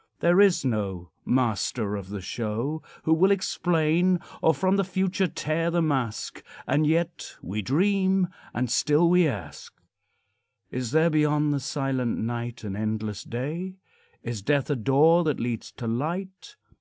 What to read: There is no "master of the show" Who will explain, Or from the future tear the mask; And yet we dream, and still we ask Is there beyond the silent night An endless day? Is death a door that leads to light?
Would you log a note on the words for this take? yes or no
no